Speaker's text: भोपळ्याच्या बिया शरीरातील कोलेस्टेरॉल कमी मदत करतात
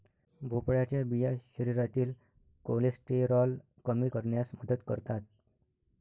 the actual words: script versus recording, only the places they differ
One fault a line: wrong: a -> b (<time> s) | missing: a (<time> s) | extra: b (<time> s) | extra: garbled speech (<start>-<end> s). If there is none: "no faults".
extra: करण्यास (4.1 s)